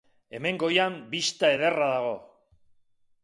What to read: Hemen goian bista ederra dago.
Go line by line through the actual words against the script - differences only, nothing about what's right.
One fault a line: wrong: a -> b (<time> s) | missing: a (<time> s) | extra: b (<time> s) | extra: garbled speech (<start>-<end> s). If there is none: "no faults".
no faults